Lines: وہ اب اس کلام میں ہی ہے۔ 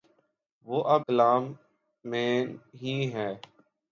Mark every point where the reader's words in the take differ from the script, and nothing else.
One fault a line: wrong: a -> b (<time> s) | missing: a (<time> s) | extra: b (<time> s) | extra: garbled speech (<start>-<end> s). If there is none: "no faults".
missing: اس (1.0 s)